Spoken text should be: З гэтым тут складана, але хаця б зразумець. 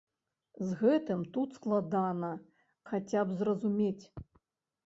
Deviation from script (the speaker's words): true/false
true